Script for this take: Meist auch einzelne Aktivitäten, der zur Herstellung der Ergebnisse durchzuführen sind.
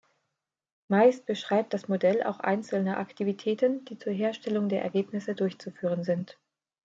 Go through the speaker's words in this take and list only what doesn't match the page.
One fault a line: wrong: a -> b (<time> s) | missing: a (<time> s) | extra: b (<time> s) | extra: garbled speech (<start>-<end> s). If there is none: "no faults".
extra: beschreibt das Modell (1.3 s)
wrong: der -> die (3.8 s)